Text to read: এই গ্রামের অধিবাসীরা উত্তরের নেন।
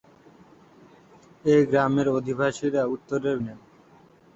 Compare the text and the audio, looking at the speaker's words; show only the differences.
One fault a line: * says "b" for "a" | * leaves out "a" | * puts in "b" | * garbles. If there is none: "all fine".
all fine